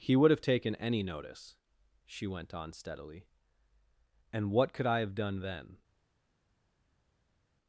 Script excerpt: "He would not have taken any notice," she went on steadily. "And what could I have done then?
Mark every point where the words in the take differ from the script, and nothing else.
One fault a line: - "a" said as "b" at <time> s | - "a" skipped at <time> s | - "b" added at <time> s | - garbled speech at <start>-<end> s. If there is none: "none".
- "not" skipped at 0.3 s